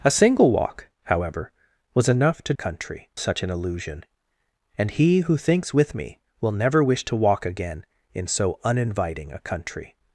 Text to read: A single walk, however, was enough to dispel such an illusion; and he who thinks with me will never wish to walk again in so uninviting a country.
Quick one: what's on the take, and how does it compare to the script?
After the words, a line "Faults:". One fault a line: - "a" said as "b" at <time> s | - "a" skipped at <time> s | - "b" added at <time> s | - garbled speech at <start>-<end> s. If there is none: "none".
A single walk, however, was enough to country such an illusion; and he who thinks with me will never wish to walk again in so uninviting a country.
Faults:
- "dispel" said as "country" at 2.5 s